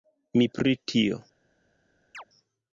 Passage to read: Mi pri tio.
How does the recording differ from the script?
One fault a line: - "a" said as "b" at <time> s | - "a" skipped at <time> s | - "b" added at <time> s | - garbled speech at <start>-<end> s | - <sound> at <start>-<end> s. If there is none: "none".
- chirp at 2.1-2.2 s